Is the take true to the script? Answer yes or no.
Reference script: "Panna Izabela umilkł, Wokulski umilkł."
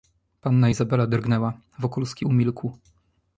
no